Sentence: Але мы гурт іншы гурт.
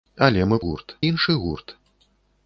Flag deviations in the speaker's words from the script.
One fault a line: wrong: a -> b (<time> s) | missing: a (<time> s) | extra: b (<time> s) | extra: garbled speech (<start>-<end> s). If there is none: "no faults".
no faults